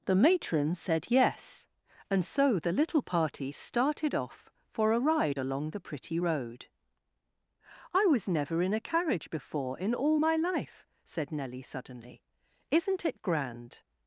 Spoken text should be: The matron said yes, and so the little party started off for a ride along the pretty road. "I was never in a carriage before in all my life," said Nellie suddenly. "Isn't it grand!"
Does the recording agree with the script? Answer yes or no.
yes